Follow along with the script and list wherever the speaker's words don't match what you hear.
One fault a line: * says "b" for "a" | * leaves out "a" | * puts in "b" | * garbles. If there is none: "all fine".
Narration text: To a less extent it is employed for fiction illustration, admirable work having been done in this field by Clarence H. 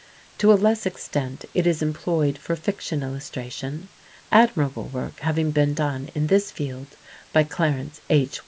all fine